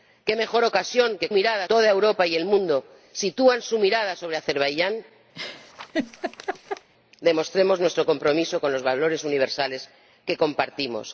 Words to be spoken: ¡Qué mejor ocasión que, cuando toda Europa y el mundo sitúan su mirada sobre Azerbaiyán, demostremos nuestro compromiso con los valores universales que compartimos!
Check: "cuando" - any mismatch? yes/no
yes